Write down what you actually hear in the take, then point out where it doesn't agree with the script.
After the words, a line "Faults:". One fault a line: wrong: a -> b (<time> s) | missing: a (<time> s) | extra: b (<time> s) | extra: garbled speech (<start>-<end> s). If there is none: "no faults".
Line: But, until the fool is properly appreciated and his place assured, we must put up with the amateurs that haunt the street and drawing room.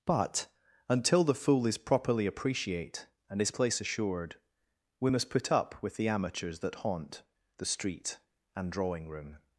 But, until the fool is properly appreciate and his place assured, we must put up with the amateurs that haunt the street and drawing room.
Faults:
wrong: appreciated -> appreciate (2.2 s)